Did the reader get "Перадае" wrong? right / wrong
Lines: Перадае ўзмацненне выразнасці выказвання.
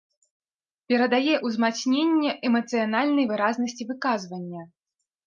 right